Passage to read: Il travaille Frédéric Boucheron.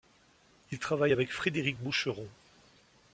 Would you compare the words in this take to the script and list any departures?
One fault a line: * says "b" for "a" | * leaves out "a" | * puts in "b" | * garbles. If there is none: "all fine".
* puts in "avec"